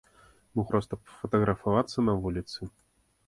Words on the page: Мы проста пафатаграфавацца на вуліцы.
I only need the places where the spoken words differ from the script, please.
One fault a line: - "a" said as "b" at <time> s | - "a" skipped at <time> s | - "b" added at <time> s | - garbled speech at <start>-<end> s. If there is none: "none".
none